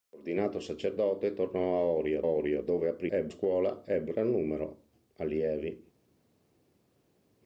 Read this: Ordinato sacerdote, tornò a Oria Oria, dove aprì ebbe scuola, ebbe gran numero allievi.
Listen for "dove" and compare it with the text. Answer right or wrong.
right